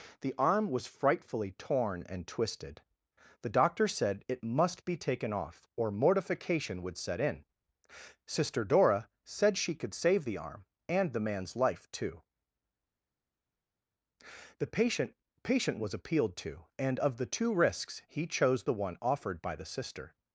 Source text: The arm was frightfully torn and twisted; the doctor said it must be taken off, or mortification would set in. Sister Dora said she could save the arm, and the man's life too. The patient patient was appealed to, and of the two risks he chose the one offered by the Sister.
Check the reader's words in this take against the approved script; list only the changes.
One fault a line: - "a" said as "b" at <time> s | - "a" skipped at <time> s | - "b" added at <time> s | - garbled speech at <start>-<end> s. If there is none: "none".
none